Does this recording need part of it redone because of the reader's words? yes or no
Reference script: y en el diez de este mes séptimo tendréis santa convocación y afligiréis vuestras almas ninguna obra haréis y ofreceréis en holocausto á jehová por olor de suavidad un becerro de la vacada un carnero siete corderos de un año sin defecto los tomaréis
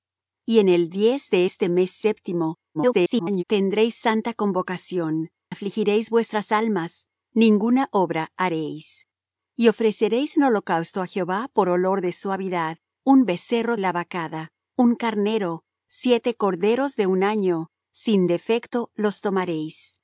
yes